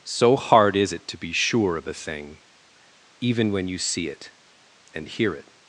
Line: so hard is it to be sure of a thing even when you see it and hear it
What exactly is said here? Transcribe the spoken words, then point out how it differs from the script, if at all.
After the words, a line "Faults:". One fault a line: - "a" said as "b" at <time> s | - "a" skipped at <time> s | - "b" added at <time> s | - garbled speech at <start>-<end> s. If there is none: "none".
so hard is it to be sure of a thing even when you see it and hear it
Faults:
none